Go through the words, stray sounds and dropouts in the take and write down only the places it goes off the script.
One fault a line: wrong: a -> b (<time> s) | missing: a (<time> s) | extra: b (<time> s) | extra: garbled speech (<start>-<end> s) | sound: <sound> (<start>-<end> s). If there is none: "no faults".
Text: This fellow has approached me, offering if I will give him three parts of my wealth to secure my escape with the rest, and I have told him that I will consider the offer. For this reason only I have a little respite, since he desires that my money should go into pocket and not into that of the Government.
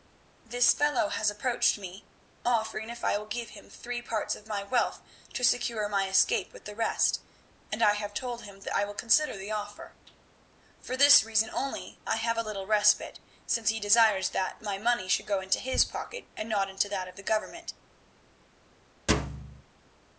extra: his (15.6 s)
sound: thud (19.1-19.6 s)